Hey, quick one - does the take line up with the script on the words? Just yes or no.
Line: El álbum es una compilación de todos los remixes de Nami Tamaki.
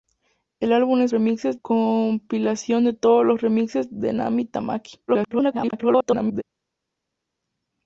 no